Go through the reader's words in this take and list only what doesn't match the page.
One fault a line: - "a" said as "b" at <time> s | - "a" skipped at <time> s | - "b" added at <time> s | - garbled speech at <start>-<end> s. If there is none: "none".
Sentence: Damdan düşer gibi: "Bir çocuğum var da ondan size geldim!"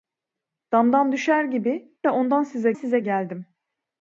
- "Bir çocuğum var" skipped at 2.0 s
- "size" added at 2.7 s